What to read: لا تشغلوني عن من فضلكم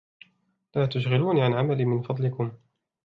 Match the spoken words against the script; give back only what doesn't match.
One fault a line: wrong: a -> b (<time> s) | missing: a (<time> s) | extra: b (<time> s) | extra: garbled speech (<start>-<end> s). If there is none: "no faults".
extra: عملي (1.5 s)